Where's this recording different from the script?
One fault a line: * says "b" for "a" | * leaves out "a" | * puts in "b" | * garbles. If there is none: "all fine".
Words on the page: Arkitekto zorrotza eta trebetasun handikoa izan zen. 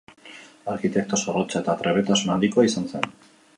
all fine